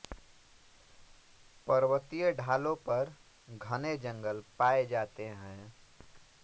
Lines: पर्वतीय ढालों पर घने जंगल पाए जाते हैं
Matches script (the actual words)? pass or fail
pass